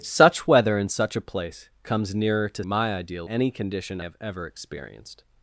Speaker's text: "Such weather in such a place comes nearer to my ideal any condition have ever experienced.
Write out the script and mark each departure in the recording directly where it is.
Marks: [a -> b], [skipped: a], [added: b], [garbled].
"Such weather in such a place comes nearer to my ideal any condition have ever experienced.